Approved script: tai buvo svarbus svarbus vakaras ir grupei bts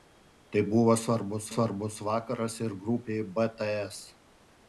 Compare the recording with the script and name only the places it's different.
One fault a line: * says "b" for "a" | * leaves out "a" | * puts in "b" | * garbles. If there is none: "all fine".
all fine